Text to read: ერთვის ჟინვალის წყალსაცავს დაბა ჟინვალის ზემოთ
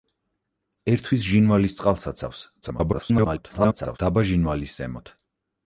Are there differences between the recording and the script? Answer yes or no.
yes